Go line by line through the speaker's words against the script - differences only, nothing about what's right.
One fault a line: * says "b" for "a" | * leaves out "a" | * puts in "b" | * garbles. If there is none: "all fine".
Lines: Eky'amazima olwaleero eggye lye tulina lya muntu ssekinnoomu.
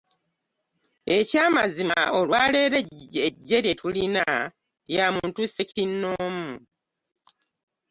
all fine